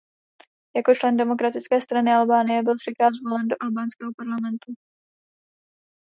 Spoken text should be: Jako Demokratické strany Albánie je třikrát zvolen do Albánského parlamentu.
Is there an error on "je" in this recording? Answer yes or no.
yes